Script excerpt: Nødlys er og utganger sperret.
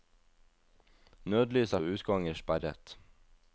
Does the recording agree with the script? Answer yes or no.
yes